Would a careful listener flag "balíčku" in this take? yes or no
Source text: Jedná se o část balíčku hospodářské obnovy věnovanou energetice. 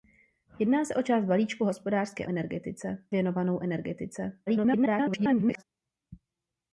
no